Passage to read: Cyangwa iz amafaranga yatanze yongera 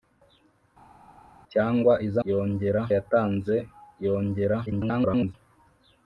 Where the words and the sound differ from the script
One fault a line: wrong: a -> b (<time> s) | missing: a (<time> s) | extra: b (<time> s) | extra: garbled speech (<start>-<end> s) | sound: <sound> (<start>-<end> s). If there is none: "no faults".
wrong: amafaranga -> yongera (2.3 s)
extra: garbled speech (4.7-5.3 s)